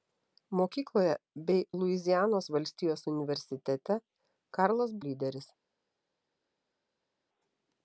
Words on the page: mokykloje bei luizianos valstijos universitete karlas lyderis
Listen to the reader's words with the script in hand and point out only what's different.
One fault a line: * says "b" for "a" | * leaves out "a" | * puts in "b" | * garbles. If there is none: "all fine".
all fine